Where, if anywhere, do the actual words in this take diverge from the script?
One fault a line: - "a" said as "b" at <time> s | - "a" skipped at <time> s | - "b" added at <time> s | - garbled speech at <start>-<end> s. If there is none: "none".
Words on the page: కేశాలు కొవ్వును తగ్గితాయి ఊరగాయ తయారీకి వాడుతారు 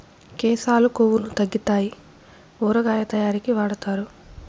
none